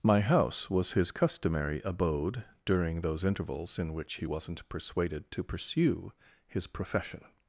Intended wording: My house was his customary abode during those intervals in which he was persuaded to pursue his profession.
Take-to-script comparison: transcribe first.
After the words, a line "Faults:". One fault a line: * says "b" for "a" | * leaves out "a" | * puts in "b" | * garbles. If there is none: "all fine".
My house was his customary abode during those intervals in which he wasn't persuaded to pursue his profession.
Faults:
* says "wasn't" for "was"